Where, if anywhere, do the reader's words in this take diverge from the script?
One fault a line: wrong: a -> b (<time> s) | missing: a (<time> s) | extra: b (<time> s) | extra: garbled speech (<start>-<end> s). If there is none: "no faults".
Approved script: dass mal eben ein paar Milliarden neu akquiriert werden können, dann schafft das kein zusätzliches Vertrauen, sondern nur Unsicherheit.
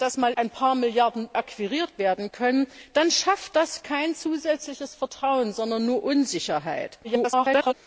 missing: eben (0.3 s)
missing: neu (1.3 s)
extra: garbled speech (7.0-7.7 s)